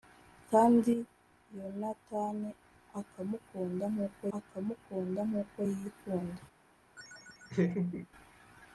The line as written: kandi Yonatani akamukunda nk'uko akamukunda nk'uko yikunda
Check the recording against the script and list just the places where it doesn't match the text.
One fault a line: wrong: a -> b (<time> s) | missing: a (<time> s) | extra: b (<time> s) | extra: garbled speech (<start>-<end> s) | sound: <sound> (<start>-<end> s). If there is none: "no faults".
sound: laugh (7.0-8.1 s)